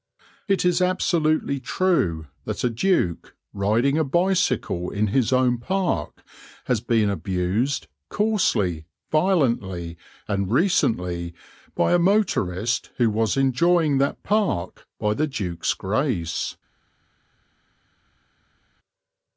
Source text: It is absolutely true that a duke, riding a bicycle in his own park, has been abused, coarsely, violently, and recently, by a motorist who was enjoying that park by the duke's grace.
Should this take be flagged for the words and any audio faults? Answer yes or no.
no